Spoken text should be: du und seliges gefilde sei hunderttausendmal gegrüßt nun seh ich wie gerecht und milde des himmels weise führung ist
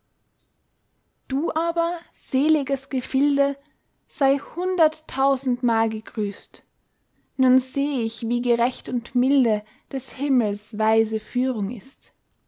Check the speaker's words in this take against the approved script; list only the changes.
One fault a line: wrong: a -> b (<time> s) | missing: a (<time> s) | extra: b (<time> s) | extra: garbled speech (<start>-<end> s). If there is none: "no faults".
wrong: und -> aber (1.5 s)